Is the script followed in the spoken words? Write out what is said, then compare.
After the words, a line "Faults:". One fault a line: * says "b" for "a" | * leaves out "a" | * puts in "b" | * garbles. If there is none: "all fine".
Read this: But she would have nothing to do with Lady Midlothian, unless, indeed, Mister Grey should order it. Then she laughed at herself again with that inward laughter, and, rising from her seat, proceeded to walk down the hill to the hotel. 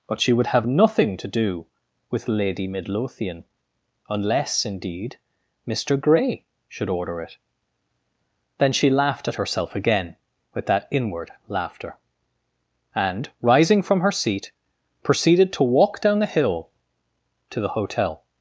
But she would have nothing to do with Lady Midlothian, unless, indeed, Mister Grey should order it. Then she laughed at herself again with that inward laughter, and, rising from her seat, proceeded to walk down the hill to the hotel.
Faults:
all fine